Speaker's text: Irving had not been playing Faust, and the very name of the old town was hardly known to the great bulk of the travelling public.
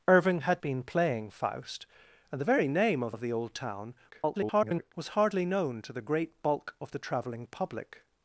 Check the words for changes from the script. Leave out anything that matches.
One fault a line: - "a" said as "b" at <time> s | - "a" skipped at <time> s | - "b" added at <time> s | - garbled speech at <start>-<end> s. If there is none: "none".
- "not" skipped at 0.6 s
- "of" added at 3.1 s
- garbled speech at 4.1-4.9 s